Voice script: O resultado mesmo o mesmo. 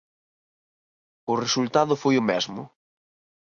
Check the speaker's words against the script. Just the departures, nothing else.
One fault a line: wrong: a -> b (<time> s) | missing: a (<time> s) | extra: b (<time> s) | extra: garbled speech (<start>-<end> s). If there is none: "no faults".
wrong: mesmo -> foi (2.0 s)